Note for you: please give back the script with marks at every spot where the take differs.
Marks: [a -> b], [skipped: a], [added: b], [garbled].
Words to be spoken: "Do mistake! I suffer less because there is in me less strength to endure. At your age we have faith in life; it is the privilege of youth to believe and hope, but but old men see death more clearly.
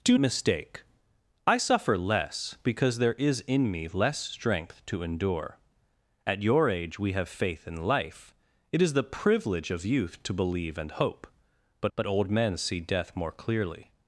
"Do mistake! I suffer less because there is in me less strength to endure. At your age we have faith in life; it is the privilege of youth to believe and hope, but but old men see death more clearly.